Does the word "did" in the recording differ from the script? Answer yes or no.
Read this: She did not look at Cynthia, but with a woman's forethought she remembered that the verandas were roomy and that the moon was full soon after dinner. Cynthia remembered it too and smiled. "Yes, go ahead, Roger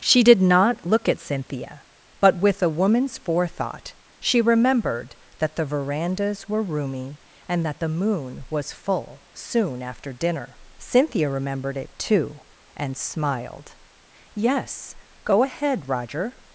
no